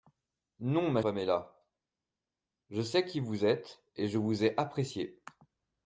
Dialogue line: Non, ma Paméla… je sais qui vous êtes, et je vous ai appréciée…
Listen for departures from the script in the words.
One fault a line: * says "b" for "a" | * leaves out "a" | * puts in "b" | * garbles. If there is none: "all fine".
all fine